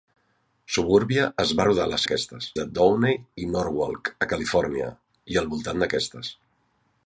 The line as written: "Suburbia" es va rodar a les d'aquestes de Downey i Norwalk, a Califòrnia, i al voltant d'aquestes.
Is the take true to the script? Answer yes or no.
yes